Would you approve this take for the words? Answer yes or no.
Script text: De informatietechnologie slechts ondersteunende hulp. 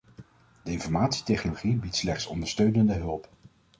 no